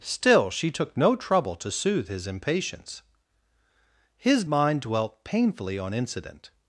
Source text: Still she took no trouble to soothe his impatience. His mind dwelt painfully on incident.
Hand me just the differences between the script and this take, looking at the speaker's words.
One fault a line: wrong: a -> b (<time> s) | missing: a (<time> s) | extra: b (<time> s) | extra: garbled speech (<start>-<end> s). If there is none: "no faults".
no faults